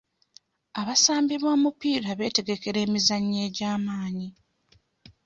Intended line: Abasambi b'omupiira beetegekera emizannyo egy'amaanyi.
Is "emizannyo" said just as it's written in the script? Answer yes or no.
yes